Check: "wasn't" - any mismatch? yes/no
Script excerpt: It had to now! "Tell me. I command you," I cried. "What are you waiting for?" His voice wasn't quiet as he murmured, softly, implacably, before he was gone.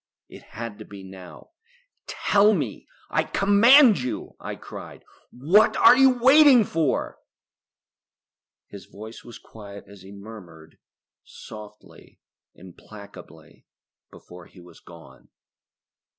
yes